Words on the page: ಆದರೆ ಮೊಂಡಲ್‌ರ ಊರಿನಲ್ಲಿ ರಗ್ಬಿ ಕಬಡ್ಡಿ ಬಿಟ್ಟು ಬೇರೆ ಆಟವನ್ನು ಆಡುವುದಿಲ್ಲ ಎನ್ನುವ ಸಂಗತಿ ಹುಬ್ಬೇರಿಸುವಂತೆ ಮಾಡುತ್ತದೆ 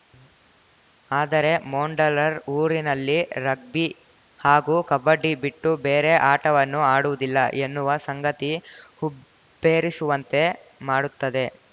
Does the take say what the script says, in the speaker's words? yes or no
no